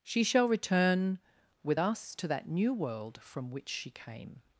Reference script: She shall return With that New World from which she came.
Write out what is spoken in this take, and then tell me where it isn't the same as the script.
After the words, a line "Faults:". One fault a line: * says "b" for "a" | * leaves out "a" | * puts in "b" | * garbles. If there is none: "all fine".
She shall return With us to that New World from which she came.
Faults:
* puts in "us to"